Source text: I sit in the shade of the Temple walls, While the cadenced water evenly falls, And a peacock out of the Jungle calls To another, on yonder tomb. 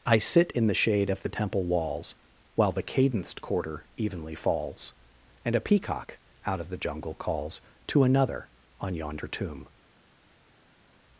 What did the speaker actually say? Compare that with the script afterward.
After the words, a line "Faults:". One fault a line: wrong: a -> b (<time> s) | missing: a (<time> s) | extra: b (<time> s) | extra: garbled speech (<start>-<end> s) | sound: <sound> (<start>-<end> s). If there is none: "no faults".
I sit in the shade of the Temple walls, While the cadenced quarter evenly falls, And a peacock out of the Jungle calls To another, on yonder tomb.
Faults:
wrong: water -> quarter (3.4 s)